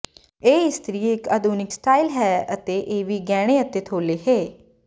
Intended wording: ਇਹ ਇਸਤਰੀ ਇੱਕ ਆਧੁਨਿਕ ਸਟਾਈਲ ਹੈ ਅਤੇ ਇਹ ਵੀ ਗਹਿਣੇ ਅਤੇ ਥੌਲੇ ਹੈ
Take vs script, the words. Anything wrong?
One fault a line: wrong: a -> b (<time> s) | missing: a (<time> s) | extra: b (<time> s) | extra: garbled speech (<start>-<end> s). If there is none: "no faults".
no faults